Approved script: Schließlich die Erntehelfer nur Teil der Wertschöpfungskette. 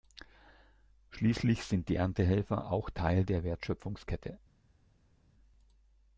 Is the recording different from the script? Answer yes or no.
yes